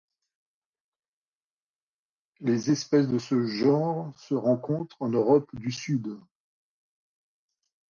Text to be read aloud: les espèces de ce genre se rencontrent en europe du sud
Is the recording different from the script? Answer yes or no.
no